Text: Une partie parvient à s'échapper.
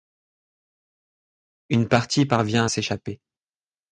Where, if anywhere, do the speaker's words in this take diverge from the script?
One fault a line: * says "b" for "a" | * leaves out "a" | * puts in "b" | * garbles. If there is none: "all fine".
all fine